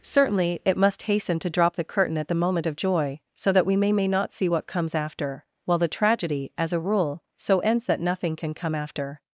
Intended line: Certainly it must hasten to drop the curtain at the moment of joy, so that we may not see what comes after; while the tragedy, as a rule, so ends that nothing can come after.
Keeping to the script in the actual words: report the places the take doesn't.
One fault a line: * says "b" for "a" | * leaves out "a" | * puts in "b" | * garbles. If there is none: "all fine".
* puts in "may"